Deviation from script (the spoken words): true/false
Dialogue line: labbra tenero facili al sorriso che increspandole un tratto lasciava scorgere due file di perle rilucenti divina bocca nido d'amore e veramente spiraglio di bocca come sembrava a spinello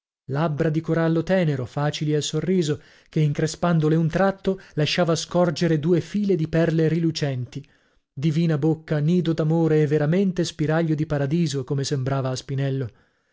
true